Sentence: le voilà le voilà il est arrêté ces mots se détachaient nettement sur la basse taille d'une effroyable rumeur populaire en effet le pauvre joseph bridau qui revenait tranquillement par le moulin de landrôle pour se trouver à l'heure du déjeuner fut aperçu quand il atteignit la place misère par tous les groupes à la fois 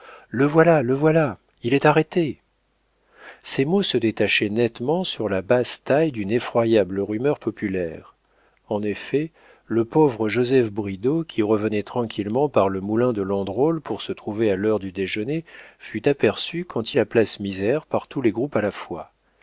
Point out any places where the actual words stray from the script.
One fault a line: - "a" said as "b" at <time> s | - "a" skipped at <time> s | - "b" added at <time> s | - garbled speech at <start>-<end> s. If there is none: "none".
- "il atteignit" skipped at 16.9 s